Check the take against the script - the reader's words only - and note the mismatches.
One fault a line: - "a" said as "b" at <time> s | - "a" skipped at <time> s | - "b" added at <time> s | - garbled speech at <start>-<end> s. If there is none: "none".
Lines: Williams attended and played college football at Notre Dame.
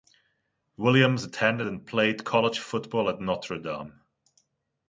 none